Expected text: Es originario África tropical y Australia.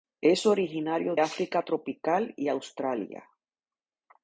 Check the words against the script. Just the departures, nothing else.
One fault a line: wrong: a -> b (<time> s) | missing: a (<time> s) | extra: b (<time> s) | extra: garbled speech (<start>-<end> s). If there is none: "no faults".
no faults